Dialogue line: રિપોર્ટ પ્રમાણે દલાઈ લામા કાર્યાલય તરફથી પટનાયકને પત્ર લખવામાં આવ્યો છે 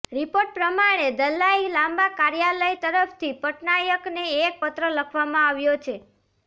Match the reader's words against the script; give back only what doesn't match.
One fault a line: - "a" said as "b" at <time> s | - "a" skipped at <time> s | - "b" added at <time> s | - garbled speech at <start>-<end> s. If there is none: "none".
- "એક" added at 4.4 s